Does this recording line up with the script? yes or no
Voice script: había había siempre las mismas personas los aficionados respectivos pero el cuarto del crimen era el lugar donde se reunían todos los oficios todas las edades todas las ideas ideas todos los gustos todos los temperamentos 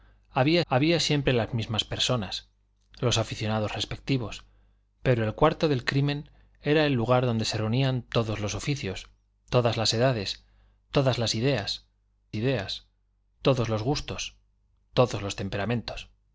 yes